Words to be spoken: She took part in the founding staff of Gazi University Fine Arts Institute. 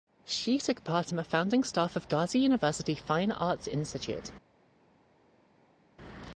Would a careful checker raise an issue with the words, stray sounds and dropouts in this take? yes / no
no